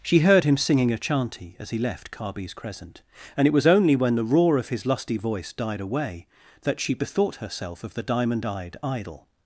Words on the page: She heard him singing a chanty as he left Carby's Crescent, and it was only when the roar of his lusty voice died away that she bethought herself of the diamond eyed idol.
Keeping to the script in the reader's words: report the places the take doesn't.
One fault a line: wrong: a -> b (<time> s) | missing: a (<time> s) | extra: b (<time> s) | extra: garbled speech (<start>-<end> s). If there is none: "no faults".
no faults